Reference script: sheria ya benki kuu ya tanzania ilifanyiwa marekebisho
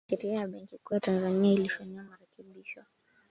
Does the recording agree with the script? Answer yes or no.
yes